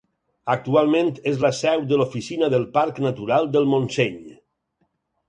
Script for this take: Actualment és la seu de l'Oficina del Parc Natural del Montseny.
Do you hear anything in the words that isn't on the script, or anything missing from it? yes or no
no